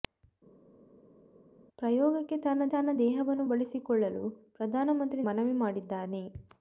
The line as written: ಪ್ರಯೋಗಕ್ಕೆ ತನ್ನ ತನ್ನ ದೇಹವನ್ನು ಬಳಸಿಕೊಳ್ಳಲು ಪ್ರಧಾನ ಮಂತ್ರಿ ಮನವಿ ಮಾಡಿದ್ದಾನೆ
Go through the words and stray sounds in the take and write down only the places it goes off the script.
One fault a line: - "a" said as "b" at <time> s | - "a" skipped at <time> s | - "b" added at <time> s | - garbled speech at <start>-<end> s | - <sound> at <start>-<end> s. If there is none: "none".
none